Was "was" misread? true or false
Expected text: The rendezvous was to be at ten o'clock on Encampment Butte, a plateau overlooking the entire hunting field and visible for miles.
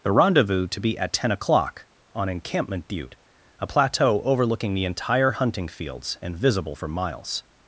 true